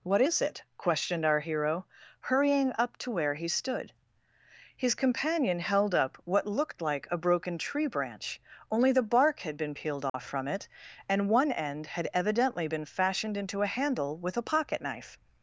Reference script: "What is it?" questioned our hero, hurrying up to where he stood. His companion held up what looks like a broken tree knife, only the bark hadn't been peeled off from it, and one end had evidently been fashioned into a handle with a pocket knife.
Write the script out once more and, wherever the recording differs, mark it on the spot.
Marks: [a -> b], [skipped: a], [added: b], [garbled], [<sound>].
"What is it?" questioned our hero, hurrying up to where he stood. His companion held up what [looks -> looked] like a broken tree [knife, -> branch] only the bark [hadn't -> had] been peeled off [dropout] from it, and one end had evidently been fashioned into a handle with a pocket knife.